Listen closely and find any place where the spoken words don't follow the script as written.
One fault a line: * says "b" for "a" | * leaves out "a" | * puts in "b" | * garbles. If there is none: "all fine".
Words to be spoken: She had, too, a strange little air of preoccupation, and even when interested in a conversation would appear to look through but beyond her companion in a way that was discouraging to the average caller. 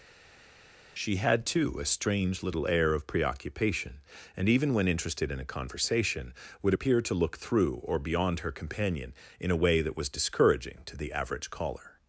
* says "or" for "but"